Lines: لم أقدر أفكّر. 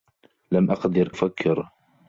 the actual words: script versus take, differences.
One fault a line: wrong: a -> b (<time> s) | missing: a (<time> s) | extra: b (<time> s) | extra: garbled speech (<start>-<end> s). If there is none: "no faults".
no faults